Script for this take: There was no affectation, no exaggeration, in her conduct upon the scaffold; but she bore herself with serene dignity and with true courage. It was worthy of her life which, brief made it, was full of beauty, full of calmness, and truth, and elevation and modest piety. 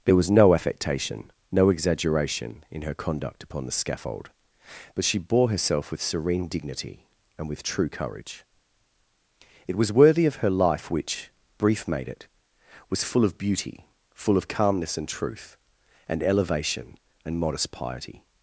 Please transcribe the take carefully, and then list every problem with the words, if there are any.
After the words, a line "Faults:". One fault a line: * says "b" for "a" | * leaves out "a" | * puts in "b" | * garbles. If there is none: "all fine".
There was no affectation, no exaggeration, in her conduct upon the scaffold; but she bore herself with serene dignity and with true courage. It was worthy of her life which, brief made it, was full of beauty, full of calmness, and truth, and elevation and modest piety.
Faults:
all fine